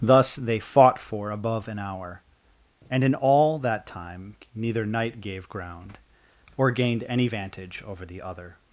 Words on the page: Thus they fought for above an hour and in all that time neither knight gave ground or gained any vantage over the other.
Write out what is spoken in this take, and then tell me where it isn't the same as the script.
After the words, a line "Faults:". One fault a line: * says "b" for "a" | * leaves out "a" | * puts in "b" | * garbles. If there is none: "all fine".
Thus they fought for above an hour and in all that time neither knight gave ground or gained any vantage over the other.
Faults:
all fine